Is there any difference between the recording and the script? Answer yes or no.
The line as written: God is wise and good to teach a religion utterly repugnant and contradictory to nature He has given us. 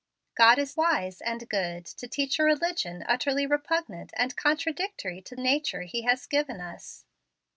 no